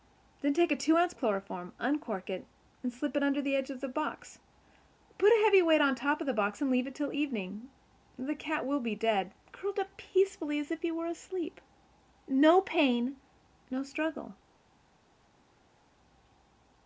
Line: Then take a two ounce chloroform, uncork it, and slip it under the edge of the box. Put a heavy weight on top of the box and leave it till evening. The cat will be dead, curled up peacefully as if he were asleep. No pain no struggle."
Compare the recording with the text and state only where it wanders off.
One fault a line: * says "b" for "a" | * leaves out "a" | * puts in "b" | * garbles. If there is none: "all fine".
all fine